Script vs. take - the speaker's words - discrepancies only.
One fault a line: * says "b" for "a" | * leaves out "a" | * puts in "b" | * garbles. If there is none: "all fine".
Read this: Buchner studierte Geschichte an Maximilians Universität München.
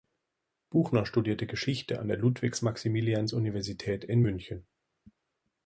* puts in "der Ludwig"
* puts in "in"